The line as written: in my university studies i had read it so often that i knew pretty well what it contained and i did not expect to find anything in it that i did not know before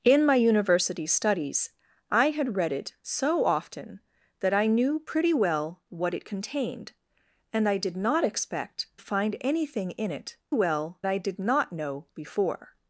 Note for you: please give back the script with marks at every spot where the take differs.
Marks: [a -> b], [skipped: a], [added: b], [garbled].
in my university studies i had read it so often that i knew pretty well what it contained and i did not expect [skipped: to] find anything in it [that -> well] i did not know before